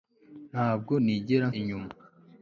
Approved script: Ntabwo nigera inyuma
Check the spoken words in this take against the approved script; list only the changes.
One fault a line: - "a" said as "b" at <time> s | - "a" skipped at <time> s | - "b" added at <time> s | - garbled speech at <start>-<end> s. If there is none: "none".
none